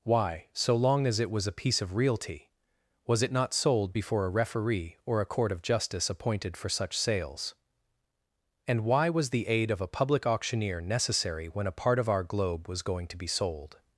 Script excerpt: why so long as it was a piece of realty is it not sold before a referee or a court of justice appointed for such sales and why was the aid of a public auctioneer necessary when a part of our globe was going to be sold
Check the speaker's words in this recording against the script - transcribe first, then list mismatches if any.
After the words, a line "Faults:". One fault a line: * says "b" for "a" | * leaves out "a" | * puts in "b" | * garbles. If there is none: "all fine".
why so long as it was a piece of realty was it not sold before a referee or a court of justice appointed for such sales and why was the aid of a public auctioneer necessary when a part of our globe was going to be sold
Faults:
* says "was" for "is"